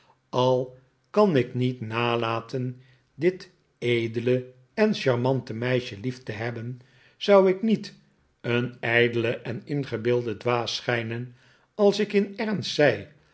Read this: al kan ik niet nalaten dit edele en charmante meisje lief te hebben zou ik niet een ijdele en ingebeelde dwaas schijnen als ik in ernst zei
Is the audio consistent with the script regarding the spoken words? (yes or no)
yes